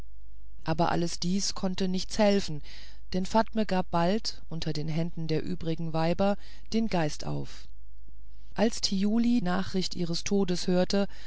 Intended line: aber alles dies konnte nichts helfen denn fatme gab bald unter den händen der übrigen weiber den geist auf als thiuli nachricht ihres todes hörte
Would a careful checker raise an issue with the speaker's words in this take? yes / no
no